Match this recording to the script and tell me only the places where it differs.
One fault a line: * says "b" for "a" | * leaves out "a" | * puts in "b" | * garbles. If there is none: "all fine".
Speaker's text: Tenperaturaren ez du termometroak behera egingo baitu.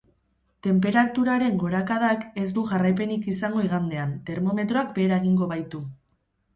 * puts in "gorakadak"
* puts in "jarraipenik izango igandean"